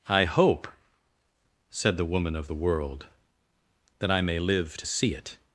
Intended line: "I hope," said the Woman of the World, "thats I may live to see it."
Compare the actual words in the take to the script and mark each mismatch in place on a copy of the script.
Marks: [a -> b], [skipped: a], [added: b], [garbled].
"I hope," said the Woman of the World, ["thats -> that] I may live to see it."